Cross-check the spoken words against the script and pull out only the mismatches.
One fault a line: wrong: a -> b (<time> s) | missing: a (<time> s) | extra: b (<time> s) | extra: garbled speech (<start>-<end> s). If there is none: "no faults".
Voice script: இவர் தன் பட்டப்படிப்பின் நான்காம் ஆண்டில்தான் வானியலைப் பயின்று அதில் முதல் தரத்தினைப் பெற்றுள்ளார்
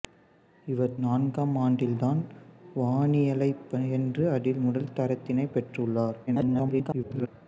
missing: தன் பட்டப்படிப்பின் (0.9 s)
extra: garbled speech (6.3-7.3 s)